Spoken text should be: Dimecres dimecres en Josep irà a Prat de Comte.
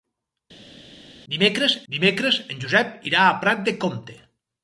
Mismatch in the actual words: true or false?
false